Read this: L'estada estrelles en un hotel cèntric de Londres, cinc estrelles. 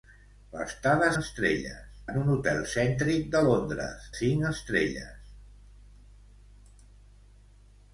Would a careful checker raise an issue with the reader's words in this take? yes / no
no